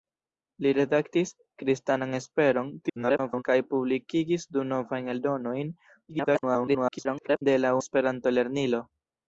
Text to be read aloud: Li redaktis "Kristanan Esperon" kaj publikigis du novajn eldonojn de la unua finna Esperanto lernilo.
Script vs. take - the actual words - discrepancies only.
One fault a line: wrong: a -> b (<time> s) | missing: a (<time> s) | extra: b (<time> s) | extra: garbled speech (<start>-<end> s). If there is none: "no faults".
extra: garbled speech (2.8-3.4 s)
extra: garbled speech (6.1-7.4 s)
missing: unua finna (7.7 s)